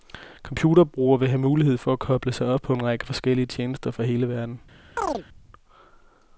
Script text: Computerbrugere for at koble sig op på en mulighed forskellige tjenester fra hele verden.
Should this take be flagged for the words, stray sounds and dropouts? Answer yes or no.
yes